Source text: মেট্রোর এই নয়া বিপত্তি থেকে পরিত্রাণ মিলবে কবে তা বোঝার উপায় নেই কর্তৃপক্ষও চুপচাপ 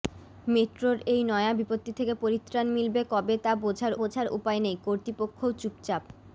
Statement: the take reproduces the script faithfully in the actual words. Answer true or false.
false